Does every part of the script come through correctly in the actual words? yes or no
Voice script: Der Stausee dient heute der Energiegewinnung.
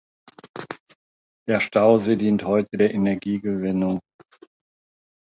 yes